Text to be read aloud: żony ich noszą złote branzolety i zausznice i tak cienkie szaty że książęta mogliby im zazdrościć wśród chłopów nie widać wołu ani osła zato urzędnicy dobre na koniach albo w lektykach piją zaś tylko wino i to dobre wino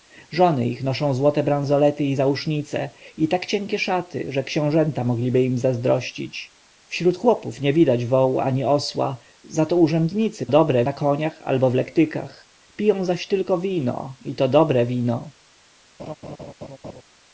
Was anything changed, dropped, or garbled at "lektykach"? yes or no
no